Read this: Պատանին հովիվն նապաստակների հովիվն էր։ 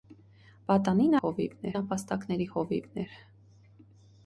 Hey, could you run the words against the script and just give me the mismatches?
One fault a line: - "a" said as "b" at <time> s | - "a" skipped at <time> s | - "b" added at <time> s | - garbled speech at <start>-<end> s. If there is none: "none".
none